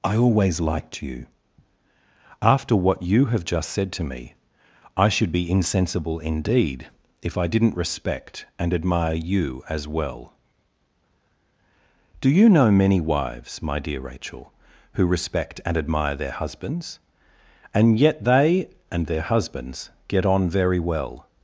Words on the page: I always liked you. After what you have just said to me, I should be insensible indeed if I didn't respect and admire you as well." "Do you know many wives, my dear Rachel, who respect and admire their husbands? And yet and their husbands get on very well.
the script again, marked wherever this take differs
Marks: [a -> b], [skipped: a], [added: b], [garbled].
I always liked you. After what you have just said to me, I should be insensible indeed if I didn't respect and admire you as well." "Do you know many wives, my dear Rachel, who respect and admire their husbands? And yet [added: they] and their husbands get on very well.